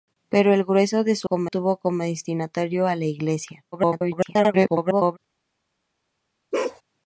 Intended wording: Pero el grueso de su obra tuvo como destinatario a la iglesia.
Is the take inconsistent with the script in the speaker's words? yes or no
yes